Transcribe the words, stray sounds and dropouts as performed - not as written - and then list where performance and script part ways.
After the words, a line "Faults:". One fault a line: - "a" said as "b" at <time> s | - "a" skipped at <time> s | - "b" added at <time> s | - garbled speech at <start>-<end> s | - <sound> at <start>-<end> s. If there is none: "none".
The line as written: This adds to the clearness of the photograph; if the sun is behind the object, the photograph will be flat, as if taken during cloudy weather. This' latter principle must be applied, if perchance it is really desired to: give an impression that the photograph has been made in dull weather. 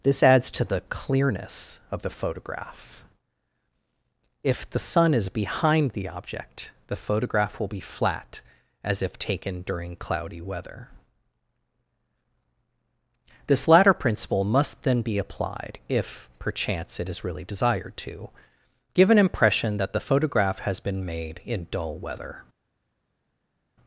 This adds to the clearness of the photograph; if the sun is behind the object, the photograph will be flat, as if taken during cloudy weather. This' latter principle must then be applied, if perchance it is really desired to: give an impression that the photograph has been made in dull weather.
Faults:
- "then" added at 14.8 s